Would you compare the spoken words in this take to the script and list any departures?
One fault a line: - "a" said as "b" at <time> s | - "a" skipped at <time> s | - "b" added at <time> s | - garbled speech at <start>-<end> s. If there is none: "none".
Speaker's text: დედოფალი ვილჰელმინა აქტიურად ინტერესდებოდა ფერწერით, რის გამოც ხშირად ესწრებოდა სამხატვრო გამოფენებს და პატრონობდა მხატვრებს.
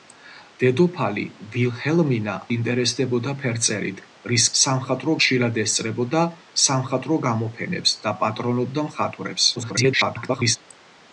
- "აქტიურად" skipped at 2.4 s
- "გამოც" said as "სამხატვრო" at 4.6 s
- garbled speech at 9.6-10.6 s